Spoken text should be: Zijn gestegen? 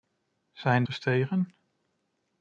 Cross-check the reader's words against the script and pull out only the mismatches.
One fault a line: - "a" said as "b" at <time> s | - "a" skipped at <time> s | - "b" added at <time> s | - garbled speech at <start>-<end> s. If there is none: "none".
none